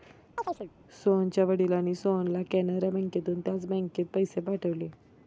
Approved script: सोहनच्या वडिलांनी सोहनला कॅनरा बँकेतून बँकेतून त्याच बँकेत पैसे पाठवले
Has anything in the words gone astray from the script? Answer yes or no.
yes